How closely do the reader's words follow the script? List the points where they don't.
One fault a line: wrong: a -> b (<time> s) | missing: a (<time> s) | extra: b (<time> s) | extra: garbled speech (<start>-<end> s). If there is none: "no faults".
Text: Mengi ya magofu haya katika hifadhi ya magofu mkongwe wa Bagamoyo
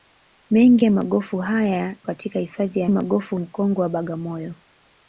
no faults